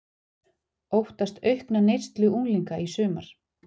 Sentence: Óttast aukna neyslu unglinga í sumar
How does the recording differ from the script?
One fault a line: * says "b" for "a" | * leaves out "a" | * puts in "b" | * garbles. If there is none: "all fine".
all fine